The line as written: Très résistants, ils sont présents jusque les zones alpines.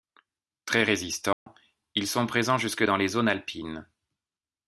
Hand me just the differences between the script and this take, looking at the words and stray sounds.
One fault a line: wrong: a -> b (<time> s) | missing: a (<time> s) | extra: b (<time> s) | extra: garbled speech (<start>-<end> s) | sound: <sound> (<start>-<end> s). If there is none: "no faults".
sound: dropout (1.3-1.5 s)
extra: dans (2.8 s)